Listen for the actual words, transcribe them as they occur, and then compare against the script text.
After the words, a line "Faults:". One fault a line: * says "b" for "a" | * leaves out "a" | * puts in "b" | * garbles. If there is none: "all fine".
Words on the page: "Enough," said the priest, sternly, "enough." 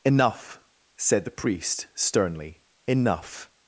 "Enough," said the priest, sternly, "enough."
Faults:
all fine